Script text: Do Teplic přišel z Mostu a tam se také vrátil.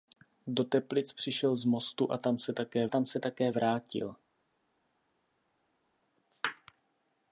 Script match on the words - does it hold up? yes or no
no